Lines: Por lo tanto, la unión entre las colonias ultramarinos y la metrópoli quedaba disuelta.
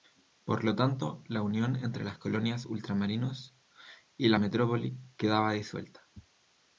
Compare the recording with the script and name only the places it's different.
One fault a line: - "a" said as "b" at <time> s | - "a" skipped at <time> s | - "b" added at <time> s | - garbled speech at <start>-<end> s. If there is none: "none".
none